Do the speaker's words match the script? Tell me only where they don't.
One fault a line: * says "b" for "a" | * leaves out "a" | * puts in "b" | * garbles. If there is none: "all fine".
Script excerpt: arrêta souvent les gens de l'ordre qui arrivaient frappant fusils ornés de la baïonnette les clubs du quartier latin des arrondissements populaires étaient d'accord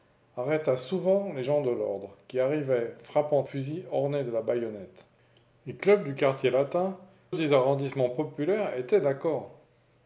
all fine